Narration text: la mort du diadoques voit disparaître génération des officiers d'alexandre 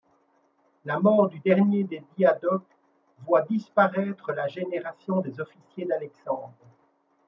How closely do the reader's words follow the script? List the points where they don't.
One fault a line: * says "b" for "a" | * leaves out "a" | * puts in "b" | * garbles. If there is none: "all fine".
* puts in "dernier des"
* puts in "la"